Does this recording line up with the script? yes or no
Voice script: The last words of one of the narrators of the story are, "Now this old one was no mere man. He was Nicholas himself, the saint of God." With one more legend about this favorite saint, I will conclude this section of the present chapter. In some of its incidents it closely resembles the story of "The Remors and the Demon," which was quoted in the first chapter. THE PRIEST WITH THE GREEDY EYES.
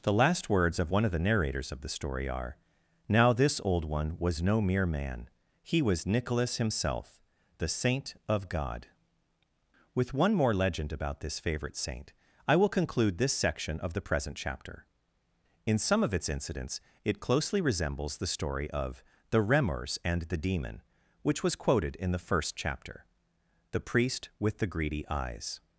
yes